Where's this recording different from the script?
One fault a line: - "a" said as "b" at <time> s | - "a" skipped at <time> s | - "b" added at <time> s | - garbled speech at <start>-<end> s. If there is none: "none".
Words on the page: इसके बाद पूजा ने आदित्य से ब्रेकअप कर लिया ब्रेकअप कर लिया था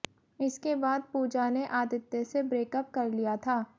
- "ब्रेकअप कर लिया" skipped at 3.4 s